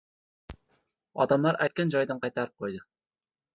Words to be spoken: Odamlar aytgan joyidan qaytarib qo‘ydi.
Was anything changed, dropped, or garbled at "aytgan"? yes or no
no